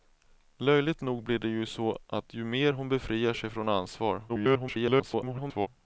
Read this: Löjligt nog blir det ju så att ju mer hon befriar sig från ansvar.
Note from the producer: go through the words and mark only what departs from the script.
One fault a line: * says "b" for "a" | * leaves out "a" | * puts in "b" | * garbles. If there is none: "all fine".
* garbles